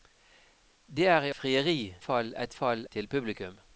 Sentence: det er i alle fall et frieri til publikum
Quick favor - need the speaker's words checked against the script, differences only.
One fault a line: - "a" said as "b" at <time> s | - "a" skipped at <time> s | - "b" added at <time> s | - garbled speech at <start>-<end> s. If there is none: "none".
- "alle" said as "frieri" at 1.3 s
- "frieri" said as "fall" at 2.5 s